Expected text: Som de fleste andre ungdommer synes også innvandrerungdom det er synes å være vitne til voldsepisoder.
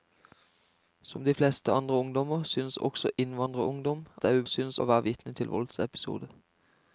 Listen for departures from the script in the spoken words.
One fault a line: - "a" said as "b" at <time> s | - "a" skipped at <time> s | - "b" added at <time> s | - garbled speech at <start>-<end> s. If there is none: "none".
none